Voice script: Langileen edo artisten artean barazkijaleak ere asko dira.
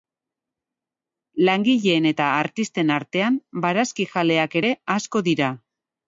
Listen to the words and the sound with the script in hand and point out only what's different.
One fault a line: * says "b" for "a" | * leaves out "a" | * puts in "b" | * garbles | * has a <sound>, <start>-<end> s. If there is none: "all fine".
* says "eta" for "edo"